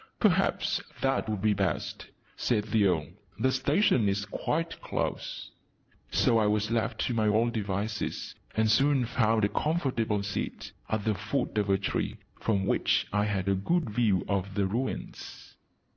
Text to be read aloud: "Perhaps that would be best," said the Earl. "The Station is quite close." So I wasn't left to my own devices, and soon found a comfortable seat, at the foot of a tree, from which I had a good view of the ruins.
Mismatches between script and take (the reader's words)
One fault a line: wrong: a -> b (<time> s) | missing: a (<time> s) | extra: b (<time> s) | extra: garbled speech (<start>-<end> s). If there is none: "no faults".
wrong: wasn't -> was (6.5 s)